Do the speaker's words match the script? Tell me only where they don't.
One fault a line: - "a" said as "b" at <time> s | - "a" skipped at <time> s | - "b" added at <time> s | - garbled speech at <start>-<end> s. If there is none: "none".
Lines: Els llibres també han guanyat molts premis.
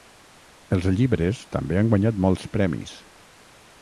none